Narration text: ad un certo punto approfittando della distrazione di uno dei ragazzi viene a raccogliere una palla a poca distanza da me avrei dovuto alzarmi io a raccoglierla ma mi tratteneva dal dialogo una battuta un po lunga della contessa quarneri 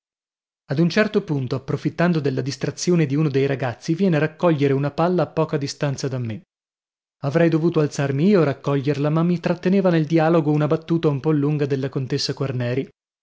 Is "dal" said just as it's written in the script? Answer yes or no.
no